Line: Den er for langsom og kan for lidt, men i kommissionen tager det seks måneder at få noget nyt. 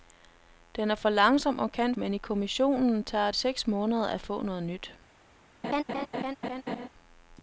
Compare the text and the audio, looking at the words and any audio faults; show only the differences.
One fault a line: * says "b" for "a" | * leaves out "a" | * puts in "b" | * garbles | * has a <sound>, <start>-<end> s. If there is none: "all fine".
* leaves out "for lidt"
* leaves out "det"
* has a laugh, 5.6-6.9 s